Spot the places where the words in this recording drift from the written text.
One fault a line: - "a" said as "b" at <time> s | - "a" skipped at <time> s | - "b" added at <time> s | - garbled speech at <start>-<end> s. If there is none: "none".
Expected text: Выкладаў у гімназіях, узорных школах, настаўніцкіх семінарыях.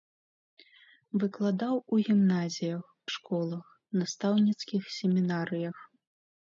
- "узорных" skipped at 2.8 s